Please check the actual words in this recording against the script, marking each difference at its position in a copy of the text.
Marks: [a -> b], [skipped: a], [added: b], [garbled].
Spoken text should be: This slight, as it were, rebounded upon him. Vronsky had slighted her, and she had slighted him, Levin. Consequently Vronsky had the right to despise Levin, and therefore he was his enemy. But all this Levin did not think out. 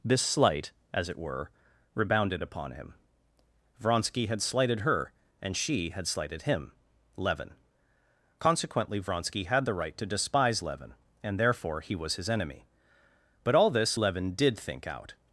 This slight, as it were, rebounded upon him. Vronsky had slighted her, and she had slighted him, Levin. Consequently Vronsky had the right to despise Levin, and therefore he was his enemy. But all this Levin did [skipped: not] think out.